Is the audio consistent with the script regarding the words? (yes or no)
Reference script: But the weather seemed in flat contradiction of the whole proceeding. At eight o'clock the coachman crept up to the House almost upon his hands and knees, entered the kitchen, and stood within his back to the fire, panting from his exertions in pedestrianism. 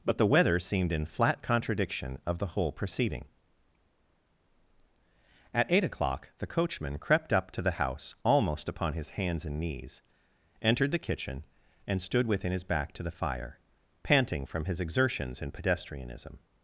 yes